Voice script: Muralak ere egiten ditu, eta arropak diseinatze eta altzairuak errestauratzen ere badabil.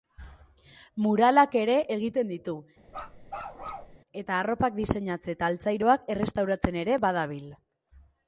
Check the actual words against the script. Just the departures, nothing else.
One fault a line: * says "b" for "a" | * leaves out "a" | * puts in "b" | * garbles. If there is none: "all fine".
all fine